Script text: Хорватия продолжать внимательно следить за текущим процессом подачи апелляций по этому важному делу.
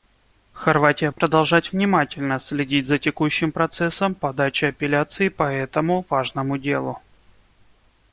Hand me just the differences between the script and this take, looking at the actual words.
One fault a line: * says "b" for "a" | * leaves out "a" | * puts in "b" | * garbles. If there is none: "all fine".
all fine